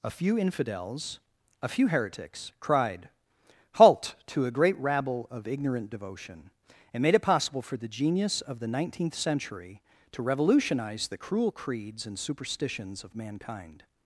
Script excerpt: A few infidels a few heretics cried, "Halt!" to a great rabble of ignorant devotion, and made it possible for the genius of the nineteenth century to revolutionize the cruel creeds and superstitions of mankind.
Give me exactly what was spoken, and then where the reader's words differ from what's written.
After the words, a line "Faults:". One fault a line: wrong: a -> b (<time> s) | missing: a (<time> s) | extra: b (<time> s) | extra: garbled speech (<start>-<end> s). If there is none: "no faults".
A few infidels a few heretics cried, "Halt!" to a great rabble of ignorant devotion, and made it possible for the genius of the nineteenth century to revolutionize the cruel creeds and superstitions of mankind.
Faults:
no faults